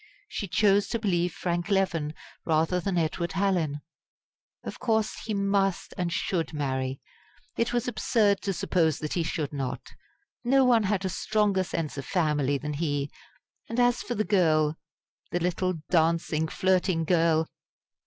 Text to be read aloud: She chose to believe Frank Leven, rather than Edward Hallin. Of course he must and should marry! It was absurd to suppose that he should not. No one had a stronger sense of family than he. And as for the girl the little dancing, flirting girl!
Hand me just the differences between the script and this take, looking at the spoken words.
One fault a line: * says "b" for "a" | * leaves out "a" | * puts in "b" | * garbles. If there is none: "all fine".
all fine